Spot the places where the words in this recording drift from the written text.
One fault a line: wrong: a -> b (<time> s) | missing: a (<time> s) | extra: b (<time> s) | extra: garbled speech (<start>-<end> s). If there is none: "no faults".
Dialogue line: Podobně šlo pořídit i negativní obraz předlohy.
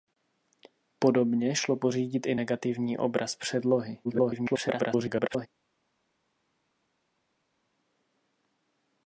extra: garbled speech (4.0-5.5 s)